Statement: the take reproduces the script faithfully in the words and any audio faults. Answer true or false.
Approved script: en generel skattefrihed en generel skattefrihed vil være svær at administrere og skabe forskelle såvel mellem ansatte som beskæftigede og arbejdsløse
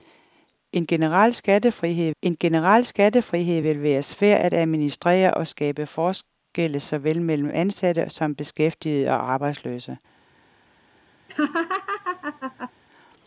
false